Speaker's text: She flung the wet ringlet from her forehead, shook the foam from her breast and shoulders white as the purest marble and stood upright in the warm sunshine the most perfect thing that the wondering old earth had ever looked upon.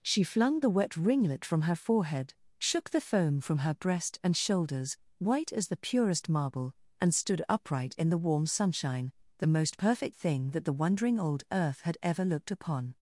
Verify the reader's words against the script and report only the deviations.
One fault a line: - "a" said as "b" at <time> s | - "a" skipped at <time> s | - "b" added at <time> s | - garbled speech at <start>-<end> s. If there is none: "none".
none